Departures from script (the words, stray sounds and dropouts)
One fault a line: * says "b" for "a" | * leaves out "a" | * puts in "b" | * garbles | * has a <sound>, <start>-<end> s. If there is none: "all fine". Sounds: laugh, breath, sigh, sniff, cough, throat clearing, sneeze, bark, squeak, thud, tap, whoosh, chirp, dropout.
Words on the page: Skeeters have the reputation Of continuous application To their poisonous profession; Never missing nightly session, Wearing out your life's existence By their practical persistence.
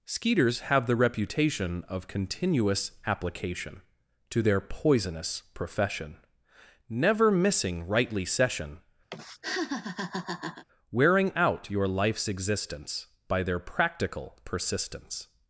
* says "rightly" for "nightly"
* has a laugh, 9.1-10.6 s